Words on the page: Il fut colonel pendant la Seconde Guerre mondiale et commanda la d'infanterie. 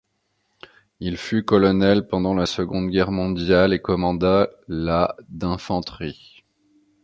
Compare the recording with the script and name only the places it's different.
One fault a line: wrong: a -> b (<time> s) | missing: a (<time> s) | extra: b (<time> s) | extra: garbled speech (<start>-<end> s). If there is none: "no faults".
no faults